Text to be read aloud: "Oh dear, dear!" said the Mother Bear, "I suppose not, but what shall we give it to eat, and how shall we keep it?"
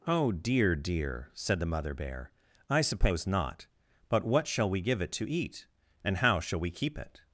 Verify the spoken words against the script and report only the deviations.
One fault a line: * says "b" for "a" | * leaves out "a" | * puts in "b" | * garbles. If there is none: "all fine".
all fine